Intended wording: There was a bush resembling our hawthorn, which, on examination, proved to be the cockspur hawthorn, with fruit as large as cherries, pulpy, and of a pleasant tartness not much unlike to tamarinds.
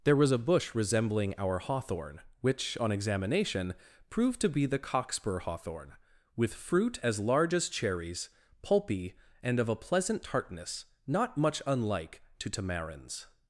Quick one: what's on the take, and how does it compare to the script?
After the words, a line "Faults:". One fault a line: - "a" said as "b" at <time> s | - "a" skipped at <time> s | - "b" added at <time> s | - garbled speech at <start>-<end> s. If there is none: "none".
There was a bush resembling our hawthorn, which, on examination, proved to be the cockspur hawthorn, with fruit as large as cherries, pulpy, and of a pleasant tartness not much unlike to tamarinds.
Faults:
none